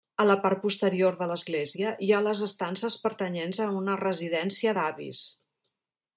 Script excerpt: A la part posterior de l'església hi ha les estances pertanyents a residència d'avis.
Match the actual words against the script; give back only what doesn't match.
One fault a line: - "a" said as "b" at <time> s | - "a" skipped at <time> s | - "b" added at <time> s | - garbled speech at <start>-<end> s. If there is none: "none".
- "una" added at 3.8 s